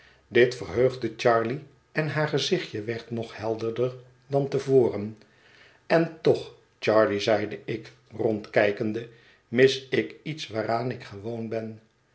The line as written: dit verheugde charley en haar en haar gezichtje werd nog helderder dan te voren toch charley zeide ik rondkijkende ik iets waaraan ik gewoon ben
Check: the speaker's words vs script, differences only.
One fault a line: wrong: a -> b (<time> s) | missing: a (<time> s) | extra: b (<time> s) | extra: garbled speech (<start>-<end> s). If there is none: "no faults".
missing: en haar (2.3 s)
extra: en (5.9 s)
extra: mis (9.5 s)